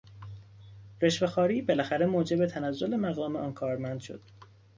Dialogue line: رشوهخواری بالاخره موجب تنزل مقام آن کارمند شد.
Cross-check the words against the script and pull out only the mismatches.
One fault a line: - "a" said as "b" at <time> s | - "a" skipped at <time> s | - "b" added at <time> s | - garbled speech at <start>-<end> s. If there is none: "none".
none